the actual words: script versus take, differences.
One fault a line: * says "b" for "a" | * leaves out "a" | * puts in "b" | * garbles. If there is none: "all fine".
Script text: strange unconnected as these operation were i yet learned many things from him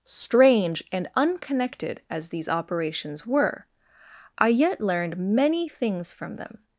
* puts in "and"
* says "operations" for "operation"
* says "them" for "him"